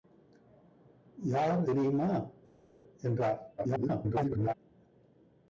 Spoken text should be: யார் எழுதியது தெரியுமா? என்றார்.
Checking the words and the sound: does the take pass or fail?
fail